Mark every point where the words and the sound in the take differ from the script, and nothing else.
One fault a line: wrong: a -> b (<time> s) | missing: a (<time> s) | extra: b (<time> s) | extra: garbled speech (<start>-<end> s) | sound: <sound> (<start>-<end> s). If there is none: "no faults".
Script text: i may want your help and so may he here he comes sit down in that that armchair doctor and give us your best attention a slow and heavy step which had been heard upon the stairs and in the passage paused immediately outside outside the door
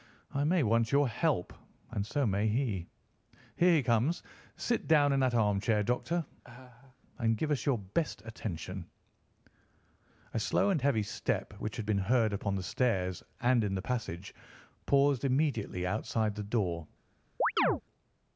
missing: that (5.3 s)
sound: laugh (6.4-7.0 s)
missing: outside (16.3 s)
sound: chirp (17.4-17.8 s)